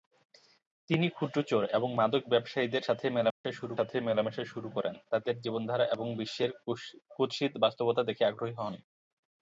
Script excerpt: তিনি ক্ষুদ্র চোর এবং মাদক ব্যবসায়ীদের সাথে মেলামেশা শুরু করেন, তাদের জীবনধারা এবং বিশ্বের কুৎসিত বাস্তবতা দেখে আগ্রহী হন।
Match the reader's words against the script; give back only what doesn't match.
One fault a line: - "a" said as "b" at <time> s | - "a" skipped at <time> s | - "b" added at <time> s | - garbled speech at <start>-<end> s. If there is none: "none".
- "সাথে মেলামেশা শুরু" added at 3.7 s